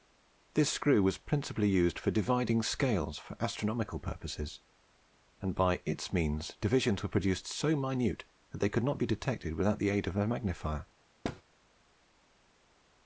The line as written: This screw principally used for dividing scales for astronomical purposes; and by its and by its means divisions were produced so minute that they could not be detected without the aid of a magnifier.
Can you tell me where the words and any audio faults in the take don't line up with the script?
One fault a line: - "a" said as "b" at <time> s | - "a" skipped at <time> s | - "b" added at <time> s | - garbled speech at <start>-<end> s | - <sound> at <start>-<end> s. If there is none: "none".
- "was" added at 1.0 s
- "and by its" skipped at 6.1 s
- thud at 11.2-11.4 s